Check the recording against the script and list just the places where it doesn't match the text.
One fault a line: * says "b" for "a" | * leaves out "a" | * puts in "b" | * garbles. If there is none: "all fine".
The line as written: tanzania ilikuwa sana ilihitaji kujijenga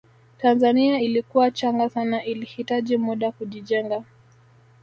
* puts in "changa"
* puts in "muda"